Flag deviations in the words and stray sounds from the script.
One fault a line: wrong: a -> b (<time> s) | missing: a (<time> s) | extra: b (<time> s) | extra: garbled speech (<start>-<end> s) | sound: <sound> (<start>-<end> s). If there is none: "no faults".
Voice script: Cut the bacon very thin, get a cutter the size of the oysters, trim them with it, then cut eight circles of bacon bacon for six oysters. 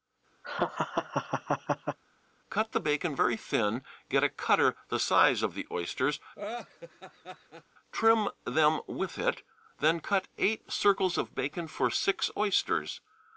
sound: laugh (0.4-2.0 s)
sound: laugh (6.4-7.6 s)
missing: bacon (11.7 s)